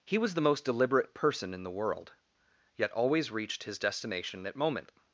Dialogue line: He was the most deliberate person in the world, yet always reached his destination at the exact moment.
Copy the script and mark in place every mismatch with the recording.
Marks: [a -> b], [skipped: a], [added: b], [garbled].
He was the most deliberate person in the world, yet always reached his destination at [skipped: the exact] moment.